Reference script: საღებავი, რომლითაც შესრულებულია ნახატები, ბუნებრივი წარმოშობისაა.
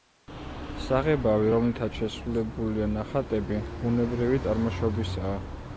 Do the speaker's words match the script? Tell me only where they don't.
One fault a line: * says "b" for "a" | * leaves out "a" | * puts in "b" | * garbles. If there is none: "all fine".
all fine